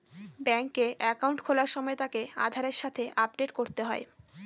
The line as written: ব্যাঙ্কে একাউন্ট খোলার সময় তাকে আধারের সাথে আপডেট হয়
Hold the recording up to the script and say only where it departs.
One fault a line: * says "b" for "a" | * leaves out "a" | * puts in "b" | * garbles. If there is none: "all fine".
* puts in "করতে"